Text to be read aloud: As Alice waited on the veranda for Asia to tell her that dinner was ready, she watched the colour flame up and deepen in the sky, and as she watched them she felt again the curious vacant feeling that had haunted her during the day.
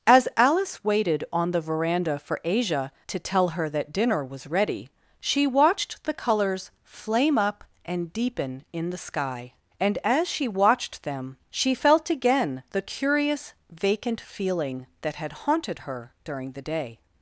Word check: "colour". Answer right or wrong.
wrong